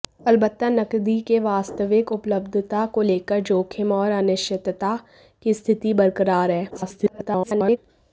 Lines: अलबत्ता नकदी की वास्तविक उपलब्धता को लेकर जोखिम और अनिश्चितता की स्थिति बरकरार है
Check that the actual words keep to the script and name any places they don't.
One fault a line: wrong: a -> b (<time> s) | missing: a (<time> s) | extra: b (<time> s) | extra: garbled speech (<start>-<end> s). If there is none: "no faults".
extra: garbled speech (6.7-7.8 s)